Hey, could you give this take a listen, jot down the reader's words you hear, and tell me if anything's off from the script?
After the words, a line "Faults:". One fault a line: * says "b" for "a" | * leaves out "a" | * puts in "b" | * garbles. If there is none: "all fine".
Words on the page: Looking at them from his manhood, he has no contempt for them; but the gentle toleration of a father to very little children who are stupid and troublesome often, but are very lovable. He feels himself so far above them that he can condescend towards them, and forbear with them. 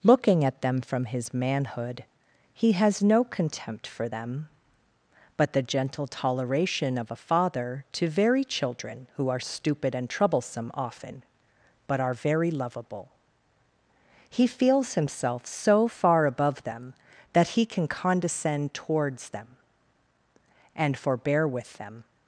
Looking at them from his manhood, he has no contempt for them; but the gentle toleration of a father to very children who are stupid and troublesome often, but are very lovable. He feels himself so far above them that he can condescend towards them, and forbear with them.
Faults:
* leaves out "little"